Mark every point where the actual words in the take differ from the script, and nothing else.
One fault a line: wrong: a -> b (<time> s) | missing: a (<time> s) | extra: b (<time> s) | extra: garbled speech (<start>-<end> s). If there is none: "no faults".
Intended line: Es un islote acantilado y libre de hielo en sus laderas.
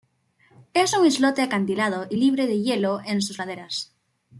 no faults